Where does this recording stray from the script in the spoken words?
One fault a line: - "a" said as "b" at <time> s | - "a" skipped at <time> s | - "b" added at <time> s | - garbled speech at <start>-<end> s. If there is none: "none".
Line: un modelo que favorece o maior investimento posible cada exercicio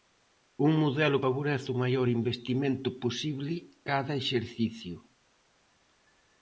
- "que" skipped at 1.2 s